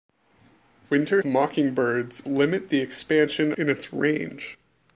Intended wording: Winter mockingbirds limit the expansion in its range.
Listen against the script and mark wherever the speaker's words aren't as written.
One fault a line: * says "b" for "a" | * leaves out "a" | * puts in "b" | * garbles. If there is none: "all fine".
all fine